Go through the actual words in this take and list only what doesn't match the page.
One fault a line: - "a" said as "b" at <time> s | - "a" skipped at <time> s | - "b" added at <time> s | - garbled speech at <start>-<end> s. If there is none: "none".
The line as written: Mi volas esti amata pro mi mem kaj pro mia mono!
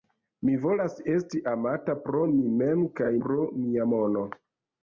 none